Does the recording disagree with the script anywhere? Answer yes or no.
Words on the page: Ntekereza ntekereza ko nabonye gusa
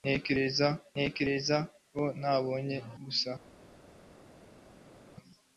no